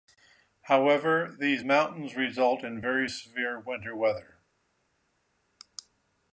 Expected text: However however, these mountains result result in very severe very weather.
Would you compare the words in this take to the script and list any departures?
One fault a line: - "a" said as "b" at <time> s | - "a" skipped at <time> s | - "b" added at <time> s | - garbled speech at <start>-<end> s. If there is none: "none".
- "however" skipped at 1.4 s
- "result" skipped at 2.6 s
- "very" said as "winter" at 3.6 s